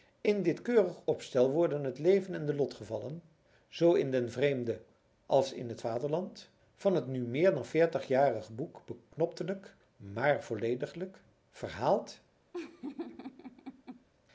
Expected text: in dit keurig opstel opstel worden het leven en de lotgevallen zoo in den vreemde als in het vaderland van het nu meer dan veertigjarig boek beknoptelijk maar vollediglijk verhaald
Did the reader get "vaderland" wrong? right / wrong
right